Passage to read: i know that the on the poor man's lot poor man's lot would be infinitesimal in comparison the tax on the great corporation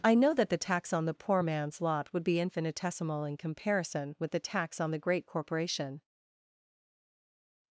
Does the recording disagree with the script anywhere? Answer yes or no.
yes